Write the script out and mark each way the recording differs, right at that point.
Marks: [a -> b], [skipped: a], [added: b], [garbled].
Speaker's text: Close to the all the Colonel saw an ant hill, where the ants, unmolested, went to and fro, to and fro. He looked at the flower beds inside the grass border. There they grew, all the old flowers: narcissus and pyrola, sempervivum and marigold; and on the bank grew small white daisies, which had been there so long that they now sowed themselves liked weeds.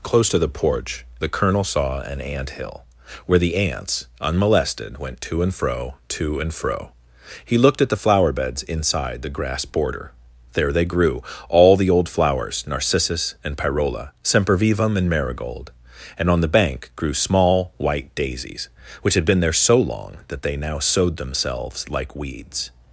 Close to the [all -> porch] the Colonel saw an ant hill, where the ants, unmolested, went to and fro, to and fro. He looked at the flower beds inside the grass border. There they grew, all the old flowers: narcissus and pyrola, sempervivum and marigold; and on the bank grew small white daisies, which had been there so long that they now sowed themselves [liked -> like] weeds.